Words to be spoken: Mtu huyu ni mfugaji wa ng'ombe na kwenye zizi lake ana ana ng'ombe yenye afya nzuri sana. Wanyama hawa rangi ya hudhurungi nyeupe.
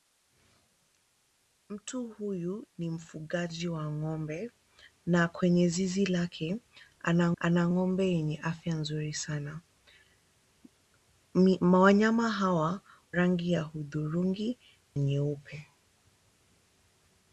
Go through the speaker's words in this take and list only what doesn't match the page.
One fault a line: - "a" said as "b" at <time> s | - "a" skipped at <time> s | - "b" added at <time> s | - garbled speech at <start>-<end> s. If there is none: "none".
none